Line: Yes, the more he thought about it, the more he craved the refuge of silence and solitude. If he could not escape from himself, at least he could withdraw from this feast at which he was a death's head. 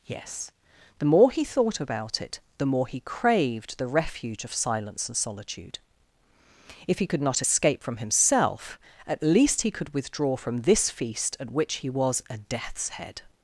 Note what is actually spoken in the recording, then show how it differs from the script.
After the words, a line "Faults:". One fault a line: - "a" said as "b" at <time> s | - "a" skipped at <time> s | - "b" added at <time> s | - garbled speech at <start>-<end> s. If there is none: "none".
Yes, the more he thought about it, the more he craved the refuge of silence and solitude. If he could not escape from himself, at least he could withdraw from this feast at which he was a death's head.
Faults:
none